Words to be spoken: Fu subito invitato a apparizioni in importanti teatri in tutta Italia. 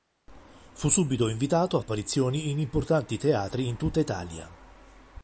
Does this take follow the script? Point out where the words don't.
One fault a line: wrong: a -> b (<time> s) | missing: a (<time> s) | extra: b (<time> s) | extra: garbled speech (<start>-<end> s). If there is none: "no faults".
no faults